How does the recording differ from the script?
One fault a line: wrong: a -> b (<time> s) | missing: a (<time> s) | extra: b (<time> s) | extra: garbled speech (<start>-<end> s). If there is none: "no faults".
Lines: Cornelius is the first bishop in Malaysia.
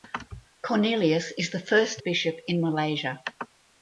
no faults